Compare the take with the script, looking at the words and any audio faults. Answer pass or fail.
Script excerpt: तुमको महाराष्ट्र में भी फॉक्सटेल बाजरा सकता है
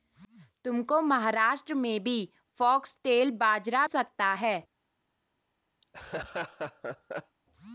fail